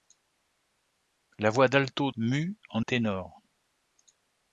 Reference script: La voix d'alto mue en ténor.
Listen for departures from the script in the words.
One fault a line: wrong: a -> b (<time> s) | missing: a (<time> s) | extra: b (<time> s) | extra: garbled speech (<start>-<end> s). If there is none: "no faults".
no faults